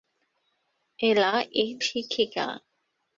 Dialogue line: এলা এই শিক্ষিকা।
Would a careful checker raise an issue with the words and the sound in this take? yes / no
no